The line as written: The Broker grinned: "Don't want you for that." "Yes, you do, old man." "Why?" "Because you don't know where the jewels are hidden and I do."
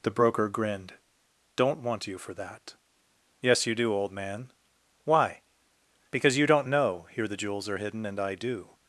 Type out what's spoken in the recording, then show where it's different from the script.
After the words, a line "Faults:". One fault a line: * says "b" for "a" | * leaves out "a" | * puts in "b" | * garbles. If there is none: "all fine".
The Broker grinned: "Don't want you for that." "Yes, you do, old man." "Why?" "Because you don't know here the jewels are hidden and I do."
Faults:
* says "here" for "where"